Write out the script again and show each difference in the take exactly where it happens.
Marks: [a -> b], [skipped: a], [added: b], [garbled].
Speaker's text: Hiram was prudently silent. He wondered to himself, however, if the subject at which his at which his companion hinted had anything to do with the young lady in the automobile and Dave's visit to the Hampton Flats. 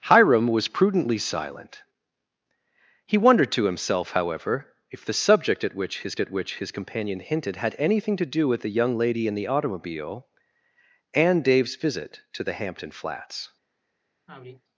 Hiram was prudently silent. He wondered to himself, however, if the subject at which his at which his companion hinted had anything to do with the young lady in the automobile and Dave's visit to the Hampton Flats.